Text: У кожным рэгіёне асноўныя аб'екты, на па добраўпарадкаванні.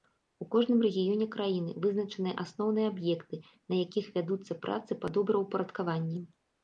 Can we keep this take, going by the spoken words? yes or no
no